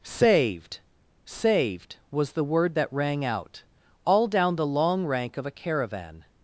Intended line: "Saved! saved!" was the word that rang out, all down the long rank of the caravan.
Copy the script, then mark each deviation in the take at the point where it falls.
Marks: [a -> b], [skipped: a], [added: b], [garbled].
"Saved! saved!" was the word that rang out, all down the long rank of [the -> a] caravan.